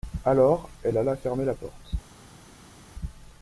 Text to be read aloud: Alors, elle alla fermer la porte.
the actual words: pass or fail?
pass